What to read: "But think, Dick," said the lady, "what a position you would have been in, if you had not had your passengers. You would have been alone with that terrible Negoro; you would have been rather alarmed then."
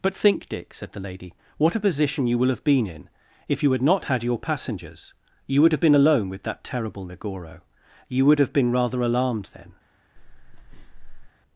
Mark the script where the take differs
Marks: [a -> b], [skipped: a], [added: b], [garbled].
"But think, Dick," said the lady, "what a position you [would -> will] have been in, if you had not had your passengers. You would have been alone with that terrible Negoro; you would have been rather alarmed then."